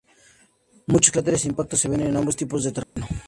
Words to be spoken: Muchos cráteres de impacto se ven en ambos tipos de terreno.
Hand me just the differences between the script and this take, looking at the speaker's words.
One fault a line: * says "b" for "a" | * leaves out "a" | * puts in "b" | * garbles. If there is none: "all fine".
all fine